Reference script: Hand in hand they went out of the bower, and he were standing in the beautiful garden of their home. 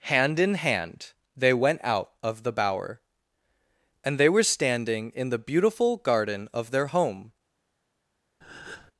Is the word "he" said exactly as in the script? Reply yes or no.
no